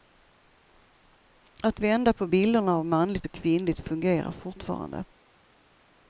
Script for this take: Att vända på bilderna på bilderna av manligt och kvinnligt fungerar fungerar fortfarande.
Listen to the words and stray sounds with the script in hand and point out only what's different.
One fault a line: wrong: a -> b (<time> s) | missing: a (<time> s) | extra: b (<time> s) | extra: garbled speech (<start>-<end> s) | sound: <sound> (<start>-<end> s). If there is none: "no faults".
missing: på bilderna (2.8 s)
missing: fungerar (4.3 s)